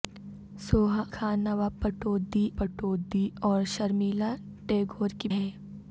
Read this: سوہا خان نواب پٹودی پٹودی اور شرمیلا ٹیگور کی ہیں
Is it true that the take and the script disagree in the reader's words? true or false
false